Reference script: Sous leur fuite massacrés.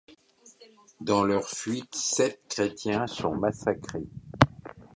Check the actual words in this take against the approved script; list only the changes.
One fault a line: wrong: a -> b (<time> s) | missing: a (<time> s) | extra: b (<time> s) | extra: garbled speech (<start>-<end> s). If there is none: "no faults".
wrong: Sous -> Dans (1.0 s)
extra: sept chrétiens sont (1.9 s)